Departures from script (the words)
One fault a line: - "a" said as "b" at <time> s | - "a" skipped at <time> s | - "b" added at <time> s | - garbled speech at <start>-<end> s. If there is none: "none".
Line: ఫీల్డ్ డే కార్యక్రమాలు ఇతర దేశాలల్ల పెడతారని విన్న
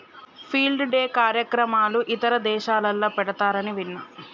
none